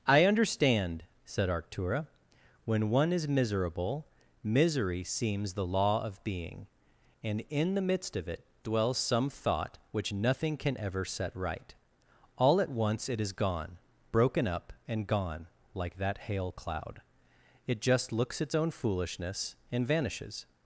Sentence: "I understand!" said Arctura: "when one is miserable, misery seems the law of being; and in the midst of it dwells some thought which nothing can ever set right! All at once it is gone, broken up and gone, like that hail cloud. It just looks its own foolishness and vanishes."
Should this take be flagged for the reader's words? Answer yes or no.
no